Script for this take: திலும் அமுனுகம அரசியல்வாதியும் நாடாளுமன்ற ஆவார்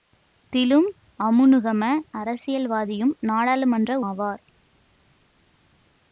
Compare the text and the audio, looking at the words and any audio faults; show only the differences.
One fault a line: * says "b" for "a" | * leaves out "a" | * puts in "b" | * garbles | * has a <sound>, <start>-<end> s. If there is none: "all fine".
all fine